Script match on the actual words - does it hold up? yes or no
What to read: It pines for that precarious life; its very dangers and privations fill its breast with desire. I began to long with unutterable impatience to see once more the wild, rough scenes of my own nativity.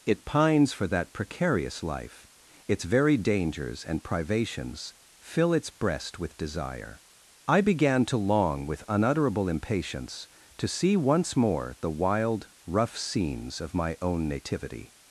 yes